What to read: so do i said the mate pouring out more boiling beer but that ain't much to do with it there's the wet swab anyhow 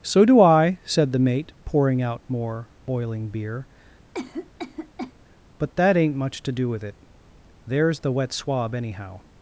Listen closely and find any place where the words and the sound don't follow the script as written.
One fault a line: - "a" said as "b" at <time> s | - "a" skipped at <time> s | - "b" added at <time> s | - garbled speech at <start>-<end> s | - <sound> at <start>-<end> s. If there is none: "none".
- cough at 4.1-5.1 s